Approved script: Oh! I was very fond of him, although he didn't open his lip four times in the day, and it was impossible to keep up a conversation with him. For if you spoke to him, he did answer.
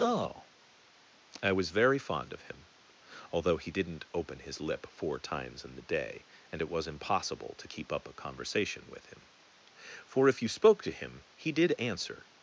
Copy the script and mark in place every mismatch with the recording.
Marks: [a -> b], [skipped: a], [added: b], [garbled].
Oh! I was very fond of him, although he didn't open his lip four times in the day, and it was impossible to keep up a conversation with him. For if you spoke to him, he did answer.